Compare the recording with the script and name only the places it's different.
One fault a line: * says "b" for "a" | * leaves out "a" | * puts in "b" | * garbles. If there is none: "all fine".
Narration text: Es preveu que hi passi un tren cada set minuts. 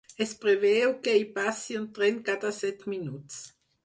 all fine